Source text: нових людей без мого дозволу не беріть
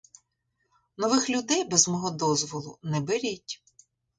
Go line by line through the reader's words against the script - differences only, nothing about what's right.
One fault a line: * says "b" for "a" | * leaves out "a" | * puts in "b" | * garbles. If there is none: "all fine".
all fine